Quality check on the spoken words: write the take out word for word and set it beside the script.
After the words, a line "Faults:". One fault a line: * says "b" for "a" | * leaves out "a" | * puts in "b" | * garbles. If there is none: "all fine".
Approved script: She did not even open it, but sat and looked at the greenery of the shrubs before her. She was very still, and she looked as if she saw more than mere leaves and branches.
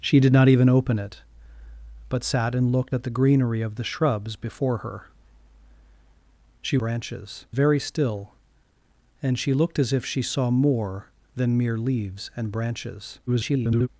She did not even open it, but sat and looked at the greenery of the shrubs before her. She branches very still, and she looked as if she saw more than mere leaves and branches. [garbled]
Faults:
* says "branches" for "was"
* garbles